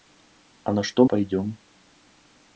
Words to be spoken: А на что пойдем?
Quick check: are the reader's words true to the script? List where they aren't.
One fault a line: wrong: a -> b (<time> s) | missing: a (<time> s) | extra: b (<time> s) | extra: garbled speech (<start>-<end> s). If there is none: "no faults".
no faults